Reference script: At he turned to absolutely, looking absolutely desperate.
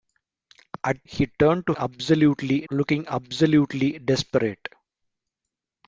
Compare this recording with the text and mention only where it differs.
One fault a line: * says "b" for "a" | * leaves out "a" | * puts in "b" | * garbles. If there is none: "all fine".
all fine